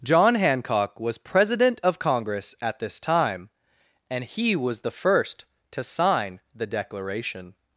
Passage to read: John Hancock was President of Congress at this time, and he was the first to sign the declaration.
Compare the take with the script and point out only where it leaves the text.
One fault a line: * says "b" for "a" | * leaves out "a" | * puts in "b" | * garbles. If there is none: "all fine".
all fine